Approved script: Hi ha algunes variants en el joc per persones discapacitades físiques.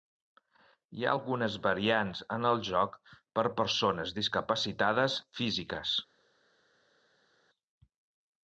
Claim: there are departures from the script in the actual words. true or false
false